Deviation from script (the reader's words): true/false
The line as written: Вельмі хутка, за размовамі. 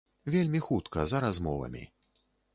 false